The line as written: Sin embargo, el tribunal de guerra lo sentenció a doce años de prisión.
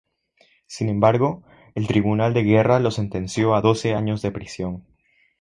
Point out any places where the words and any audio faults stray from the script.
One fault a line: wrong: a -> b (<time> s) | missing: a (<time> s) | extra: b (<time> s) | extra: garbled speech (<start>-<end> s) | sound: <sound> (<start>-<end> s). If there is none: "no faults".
no faults